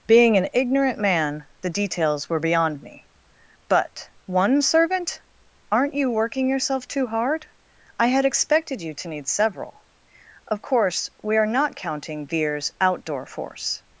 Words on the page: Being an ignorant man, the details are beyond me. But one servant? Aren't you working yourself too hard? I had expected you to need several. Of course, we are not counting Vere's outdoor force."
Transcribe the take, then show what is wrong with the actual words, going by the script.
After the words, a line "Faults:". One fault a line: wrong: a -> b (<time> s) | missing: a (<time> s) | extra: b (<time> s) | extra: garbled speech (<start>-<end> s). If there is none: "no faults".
Being an ignorant man, the details were beyond me. But one servant? Aren't you working yourself too hard? I had expected you to need several. Of course, we are not counting Vere's outdoor force."
Faults:
wrong: are -> were (2.3 s)